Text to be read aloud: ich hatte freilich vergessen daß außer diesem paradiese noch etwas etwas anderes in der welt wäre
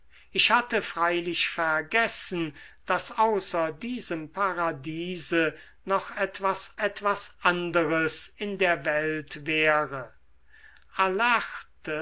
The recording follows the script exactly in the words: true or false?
true